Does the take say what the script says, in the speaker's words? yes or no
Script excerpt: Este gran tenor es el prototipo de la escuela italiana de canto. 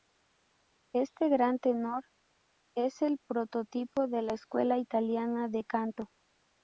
yes